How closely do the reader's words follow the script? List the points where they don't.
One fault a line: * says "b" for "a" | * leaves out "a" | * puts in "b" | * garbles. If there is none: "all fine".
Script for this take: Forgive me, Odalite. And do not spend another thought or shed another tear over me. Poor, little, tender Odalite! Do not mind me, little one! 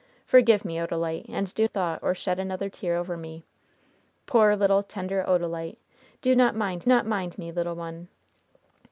* leaves out "not spend another"
* puts in "not mind"